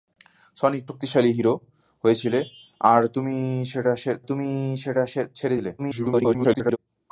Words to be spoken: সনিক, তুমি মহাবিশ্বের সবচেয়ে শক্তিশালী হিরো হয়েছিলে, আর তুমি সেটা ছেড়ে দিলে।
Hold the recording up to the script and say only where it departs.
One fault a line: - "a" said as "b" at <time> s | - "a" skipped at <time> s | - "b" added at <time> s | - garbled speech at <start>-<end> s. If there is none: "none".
- "তুমি মহাবিশ্বের সবচেয়ে" skipped at 0.8 s
- "তুমি সেটা" added at 4.3 s
- garbled speech at 5.8-6.8 s